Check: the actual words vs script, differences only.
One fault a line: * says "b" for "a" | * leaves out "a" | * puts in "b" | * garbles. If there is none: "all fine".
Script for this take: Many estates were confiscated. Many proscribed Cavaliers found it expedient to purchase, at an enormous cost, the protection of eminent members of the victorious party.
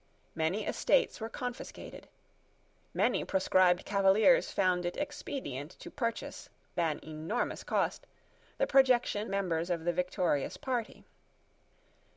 * leaves out "at"
* leaves out "of eminent"